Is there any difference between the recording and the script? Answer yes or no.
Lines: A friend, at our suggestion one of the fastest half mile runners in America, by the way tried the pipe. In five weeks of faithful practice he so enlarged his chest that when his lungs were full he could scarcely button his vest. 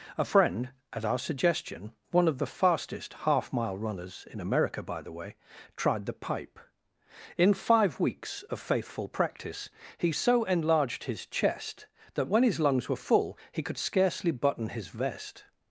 no